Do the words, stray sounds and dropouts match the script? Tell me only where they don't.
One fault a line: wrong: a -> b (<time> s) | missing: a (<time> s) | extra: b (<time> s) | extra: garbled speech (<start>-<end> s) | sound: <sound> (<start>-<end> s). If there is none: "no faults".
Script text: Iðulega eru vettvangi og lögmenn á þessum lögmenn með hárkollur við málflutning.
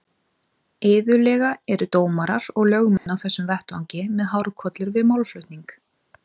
wrong: vettvangi -> dómarar (1.9 s)
sound: dropout (3.0-3.1 s)
wrong: lögmenn -> vettvangi (3.5 s)